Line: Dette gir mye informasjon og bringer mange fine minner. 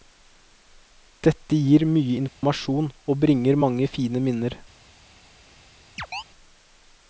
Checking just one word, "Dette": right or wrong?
right